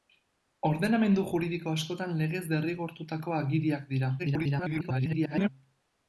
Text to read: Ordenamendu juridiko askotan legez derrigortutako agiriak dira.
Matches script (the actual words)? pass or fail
fail